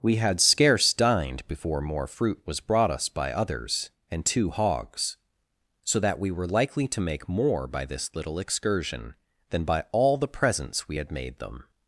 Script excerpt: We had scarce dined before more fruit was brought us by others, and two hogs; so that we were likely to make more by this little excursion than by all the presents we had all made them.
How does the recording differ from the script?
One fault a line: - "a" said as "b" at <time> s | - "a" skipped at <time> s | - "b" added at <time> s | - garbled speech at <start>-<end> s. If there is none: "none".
- "all" skipped at 11.1 s